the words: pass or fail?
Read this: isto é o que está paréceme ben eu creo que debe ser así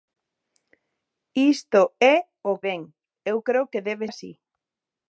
fail